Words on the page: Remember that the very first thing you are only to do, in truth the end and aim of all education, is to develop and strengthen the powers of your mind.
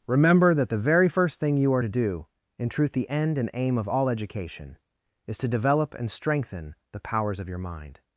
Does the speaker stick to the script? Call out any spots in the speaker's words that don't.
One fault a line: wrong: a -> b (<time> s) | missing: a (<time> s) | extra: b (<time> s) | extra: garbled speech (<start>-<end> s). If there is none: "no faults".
missing: only (1.8 s)